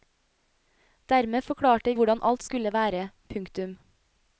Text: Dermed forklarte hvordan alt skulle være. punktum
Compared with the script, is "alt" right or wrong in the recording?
right